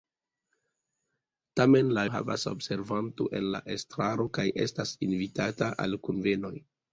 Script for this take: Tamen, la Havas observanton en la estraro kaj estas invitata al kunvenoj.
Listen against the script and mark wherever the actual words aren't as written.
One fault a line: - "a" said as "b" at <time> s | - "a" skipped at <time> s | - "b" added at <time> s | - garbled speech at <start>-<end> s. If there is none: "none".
none